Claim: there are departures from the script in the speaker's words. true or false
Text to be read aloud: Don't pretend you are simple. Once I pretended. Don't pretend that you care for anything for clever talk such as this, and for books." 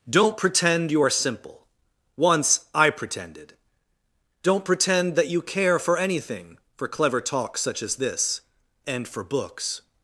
false